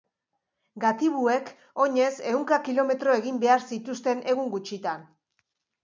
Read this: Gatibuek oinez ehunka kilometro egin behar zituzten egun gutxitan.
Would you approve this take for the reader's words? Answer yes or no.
yes